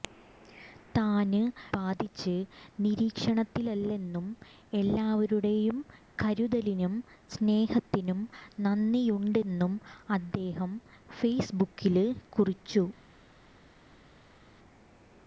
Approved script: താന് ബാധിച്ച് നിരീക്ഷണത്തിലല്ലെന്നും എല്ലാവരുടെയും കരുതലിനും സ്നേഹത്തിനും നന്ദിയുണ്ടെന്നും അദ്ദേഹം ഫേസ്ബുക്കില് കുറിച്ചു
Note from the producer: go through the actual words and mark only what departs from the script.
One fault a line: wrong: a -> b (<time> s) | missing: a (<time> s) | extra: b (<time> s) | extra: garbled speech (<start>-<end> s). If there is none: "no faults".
no faults